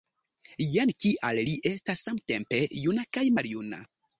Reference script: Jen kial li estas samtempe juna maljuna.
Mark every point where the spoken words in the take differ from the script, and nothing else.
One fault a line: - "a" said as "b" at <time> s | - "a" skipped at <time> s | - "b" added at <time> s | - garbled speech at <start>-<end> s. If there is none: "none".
- "kaj" added at 3.2 s